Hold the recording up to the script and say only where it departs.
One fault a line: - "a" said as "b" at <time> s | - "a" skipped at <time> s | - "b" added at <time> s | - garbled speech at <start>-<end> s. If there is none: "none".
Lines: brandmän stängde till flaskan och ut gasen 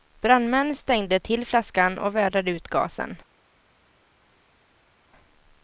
- "vädrade" added at 2.1 s